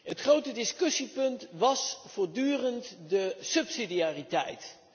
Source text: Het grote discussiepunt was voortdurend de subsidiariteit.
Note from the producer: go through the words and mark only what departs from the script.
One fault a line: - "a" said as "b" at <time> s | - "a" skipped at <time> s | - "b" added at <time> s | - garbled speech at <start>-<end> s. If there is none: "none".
none